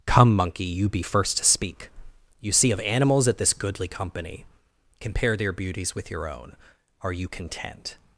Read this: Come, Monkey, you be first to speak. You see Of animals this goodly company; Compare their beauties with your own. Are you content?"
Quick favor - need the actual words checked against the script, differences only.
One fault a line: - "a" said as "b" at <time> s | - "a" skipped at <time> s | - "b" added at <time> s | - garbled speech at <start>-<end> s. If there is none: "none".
- "at" added at 3.3 s